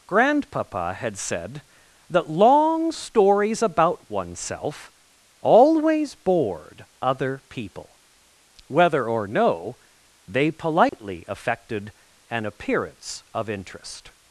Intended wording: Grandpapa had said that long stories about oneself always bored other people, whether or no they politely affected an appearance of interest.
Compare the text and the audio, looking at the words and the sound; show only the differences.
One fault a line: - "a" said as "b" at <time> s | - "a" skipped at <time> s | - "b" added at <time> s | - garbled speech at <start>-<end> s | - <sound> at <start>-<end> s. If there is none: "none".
- dropout at 10.9-10.9 s